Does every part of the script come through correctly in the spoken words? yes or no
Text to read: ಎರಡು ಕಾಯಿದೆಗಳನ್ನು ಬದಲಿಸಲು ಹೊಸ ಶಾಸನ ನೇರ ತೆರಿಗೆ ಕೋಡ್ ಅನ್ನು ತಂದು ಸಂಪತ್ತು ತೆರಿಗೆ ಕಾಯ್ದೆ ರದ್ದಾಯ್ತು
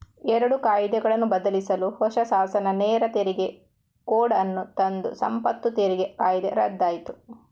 yes